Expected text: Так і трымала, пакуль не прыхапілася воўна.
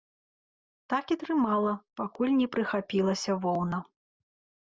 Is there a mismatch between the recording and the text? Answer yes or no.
no